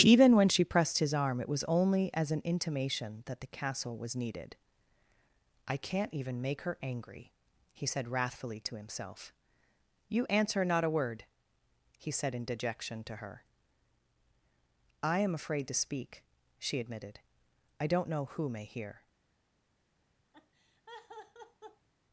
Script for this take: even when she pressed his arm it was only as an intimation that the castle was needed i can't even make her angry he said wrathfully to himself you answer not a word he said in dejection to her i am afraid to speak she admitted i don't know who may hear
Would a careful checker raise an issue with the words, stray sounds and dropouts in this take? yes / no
yes